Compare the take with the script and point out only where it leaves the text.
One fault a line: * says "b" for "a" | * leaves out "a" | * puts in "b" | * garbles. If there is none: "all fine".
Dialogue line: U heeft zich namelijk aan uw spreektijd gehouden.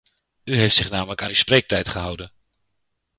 all fine